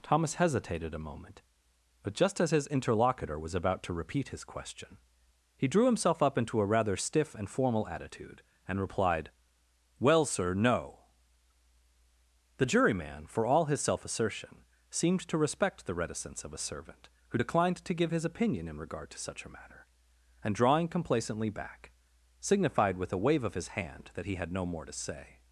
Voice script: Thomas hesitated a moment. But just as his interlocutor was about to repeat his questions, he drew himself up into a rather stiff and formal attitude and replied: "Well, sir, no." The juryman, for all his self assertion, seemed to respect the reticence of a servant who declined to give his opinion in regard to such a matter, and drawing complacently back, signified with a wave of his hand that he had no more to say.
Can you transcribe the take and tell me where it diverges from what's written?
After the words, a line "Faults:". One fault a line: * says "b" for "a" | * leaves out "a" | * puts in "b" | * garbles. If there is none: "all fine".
Thomas hesitated a moment. But just as his interlocutor was about to repeat his question, he drew himself up into a rather stiff and formal attitude and replied: "Well, sir, no." The juryman, for all his self assertion, seemed to respect the reticence of a servant who declined to give his opinion in regard to such a matter, and drawing complacently back, signified with a wave of his hand that he had no more to say.
Faults:
* says "question" for "questions"